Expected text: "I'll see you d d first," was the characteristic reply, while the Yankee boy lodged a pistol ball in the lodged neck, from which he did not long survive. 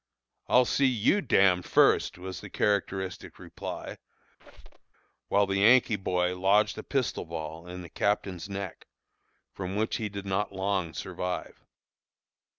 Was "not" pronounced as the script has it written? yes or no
yes